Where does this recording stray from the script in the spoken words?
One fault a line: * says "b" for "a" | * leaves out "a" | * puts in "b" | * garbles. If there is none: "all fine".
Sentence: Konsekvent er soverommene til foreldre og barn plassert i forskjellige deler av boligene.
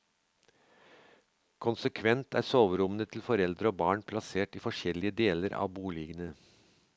all fine